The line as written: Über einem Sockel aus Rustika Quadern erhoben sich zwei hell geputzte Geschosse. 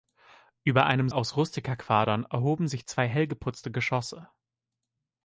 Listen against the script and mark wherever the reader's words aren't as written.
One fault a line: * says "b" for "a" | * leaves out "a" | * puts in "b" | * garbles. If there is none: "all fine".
* leaves out "Sockel"